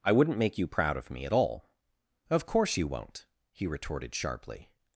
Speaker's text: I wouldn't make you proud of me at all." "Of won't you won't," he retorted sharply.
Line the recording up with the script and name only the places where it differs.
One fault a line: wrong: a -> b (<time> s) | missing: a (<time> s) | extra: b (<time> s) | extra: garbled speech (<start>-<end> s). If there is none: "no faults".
wrong: won't -> course (2.5 s)